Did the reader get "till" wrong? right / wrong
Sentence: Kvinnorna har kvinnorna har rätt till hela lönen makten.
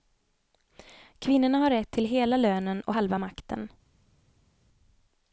right